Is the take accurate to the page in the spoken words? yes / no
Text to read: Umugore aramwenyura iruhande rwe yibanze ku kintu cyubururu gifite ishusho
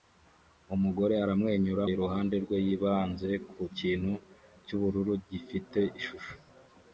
yes